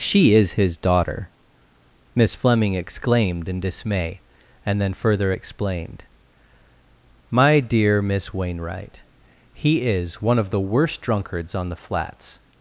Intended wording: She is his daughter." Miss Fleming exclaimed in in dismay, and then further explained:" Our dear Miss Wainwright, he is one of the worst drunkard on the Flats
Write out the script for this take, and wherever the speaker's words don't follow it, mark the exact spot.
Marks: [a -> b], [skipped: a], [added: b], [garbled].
She is his daughter." Miss Fleming exclaimed in [skipped: in] dismay, and then further explained:" [Our -> My] dear Miss Wainwright, he is one of the worst [drunkard -> drunkards] on the Flats